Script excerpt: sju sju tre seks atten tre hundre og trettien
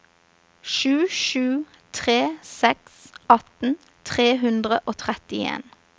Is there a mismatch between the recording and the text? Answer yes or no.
no